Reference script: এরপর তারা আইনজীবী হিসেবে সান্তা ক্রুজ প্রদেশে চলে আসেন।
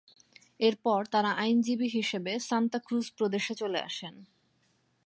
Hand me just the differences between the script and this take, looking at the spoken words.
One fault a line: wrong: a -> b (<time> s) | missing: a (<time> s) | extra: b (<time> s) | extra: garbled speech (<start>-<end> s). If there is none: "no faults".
no faults